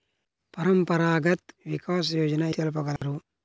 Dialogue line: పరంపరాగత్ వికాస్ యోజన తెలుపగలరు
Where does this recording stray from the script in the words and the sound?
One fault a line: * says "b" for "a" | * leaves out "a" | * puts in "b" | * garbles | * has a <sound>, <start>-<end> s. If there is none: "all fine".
* has a dropout, 3.0-3.0 s